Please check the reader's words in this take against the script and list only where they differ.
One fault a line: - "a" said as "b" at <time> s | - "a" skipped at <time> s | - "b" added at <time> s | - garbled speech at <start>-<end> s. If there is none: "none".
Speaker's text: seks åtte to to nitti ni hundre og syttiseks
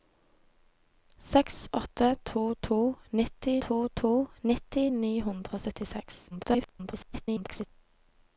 - "to to nitti" added at 3.7 s
- garbled speech at 6.3-7.7 s